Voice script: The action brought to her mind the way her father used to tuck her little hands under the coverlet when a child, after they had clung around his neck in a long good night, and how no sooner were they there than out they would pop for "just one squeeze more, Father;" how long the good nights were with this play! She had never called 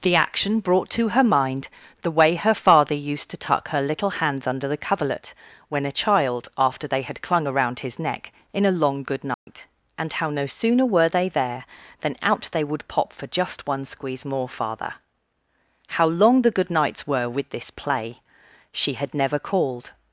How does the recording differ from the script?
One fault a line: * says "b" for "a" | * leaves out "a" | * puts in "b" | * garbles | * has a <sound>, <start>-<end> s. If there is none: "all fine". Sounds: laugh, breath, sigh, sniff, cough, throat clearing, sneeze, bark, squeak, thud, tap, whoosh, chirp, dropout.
* has a dropout, 9.3-9.5 s